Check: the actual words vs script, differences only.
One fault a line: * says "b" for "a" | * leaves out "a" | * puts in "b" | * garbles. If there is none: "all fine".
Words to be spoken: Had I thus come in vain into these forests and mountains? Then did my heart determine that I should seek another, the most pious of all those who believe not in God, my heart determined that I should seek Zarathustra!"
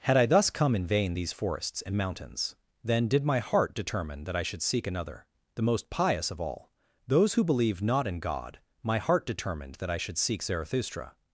* leaves out "into"